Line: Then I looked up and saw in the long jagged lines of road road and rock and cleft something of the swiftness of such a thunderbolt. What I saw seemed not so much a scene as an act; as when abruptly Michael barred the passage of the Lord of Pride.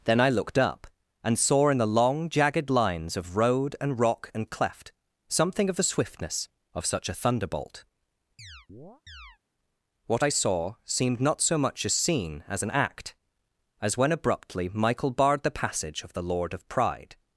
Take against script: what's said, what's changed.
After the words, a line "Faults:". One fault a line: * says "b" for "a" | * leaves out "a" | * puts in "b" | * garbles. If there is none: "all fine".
Then I looked up and saw in the long jagged lines of road and rock and cleft something of the swiftness of such a thunderbolt. What I saw seemed not so much a scene as an act; as when abruptly Michael barred the passage of the Lord of Pride.
Faults:
* leaves out "road"